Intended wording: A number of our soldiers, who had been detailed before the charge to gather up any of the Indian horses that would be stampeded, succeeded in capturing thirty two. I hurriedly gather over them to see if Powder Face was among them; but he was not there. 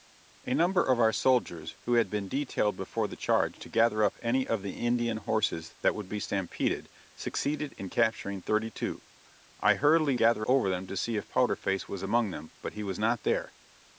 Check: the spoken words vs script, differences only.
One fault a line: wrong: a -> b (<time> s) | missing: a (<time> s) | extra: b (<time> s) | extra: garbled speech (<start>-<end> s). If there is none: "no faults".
no faults